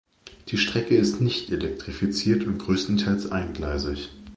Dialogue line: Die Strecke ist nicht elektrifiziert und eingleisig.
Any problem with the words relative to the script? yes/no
yes